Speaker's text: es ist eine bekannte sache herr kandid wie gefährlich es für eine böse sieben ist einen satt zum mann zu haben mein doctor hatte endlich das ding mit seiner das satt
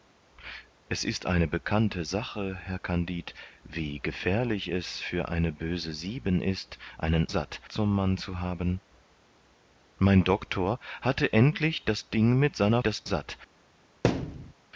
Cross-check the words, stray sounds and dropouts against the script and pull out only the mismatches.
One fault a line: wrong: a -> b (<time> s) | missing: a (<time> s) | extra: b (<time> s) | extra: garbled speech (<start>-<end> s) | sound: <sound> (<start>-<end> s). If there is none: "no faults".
sound: thud (14.0-14.5 s)